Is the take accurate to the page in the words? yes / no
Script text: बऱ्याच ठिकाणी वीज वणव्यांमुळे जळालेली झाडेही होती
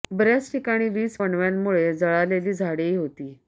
yes